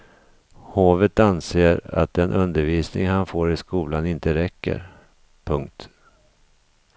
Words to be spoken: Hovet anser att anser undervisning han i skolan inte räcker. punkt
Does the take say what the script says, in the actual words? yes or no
no